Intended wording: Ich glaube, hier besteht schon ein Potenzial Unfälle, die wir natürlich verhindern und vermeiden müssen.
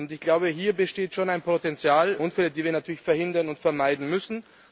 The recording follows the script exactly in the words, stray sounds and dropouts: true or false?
true